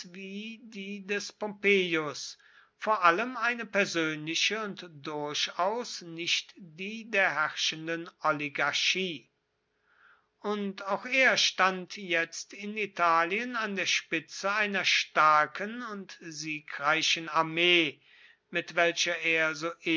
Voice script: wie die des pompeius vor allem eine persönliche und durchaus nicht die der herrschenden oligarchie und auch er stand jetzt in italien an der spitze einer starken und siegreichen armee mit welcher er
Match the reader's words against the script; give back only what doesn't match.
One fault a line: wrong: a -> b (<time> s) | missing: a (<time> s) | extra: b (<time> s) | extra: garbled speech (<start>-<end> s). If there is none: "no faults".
no faults